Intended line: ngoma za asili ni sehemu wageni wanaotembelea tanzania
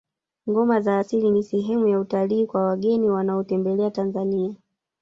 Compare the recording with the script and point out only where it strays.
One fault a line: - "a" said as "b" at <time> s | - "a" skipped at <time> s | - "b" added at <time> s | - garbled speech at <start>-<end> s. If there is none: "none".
- "ya utalii kwa" added at 1.9 s